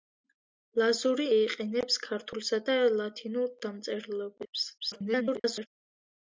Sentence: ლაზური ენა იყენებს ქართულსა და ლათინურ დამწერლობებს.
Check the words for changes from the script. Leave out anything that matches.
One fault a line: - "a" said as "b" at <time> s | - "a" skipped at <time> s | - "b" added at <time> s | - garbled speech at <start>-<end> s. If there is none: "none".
- "ენა" skipped at 1.3 s
- garbled speech at 4.8-5.7 s